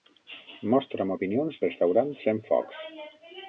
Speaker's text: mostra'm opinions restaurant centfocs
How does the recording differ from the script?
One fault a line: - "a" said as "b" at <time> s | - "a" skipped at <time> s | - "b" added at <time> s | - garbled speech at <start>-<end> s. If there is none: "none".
none